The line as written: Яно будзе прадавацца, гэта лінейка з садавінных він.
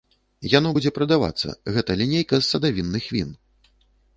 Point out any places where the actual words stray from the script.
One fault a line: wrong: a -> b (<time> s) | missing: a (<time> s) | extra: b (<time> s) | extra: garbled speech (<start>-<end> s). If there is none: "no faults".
no faults